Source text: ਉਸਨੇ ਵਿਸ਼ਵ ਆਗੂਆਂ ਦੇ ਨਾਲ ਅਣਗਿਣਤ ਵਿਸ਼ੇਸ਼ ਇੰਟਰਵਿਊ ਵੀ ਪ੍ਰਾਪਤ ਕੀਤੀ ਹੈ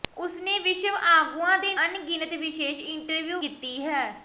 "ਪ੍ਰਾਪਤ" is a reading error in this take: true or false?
true